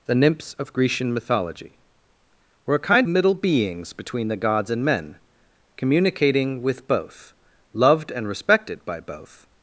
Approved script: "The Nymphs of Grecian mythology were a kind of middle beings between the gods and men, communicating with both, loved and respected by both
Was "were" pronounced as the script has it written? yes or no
yes